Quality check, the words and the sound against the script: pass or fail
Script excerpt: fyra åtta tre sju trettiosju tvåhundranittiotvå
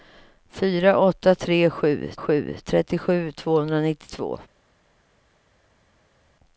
fail